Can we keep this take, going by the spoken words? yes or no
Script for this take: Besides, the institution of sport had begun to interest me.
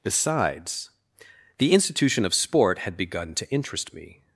yes